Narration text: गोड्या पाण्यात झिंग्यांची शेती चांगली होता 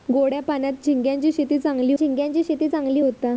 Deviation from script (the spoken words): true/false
true